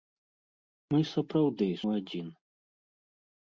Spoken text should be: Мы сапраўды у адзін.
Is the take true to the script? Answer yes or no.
yes